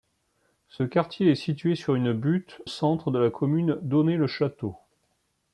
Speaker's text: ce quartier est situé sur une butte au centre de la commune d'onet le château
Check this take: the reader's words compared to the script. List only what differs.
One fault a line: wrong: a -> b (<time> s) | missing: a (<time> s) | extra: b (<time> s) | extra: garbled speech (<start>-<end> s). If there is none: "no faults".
no faults